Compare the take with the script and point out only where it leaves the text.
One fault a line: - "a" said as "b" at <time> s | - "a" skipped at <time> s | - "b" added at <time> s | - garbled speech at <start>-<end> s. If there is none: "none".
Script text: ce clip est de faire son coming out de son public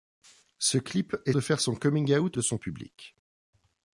none